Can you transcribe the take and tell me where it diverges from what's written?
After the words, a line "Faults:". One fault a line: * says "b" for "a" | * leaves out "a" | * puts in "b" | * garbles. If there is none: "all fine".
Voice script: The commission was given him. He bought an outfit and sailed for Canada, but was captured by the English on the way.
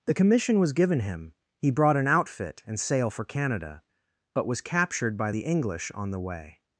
The commission was given him. He brought an outfit and sail for Canada, but was captured by the English on the way.
Faults:
* says "brought" for "bought"
* says "sail" for "sailed"